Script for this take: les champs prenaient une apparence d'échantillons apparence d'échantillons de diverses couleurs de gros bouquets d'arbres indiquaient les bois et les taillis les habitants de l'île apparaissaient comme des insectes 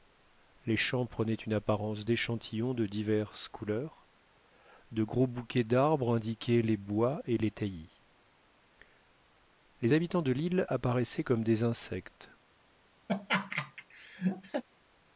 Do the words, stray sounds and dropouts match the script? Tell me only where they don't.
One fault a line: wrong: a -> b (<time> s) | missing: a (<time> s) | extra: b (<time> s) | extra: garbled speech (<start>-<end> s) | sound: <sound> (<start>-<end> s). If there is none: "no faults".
missing: apparence d'échantillons (2.7 s)
sound: laugh (13.1-14.6 s)